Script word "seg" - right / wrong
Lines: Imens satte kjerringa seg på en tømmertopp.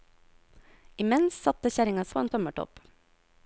wrong